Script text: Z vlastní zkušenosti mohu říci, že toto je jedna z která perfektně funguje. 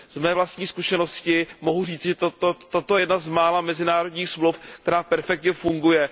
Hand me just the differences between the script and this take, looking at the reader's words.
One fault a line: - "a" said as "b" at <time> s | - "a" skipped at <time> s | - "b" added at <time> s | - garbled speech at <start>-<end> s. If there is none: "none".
- "mé" added at 0.2 s
- "mála mezinárodních smluv" added at 3.3 s